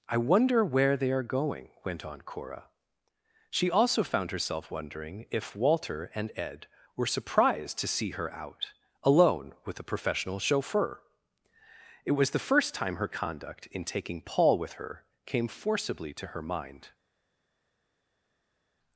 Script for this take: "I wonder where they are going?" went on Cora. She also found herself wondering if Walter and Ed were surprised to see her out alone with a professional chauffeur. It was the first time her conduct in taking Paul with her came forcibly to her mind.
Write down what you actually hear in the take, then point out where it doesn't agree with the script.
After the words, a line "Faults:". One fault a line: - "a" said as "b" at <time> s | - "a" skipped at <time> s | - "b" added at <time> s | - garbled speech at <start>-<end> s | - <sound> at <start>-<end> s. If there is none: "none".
"I wonder where they are going?" went on Cora. She also found herself wondering if Walter and Ed were surprised to see her out alone with a professional chauffeur. It was the first time her conduct in taking Paul with her came forcibly to her mind.
Faults:
none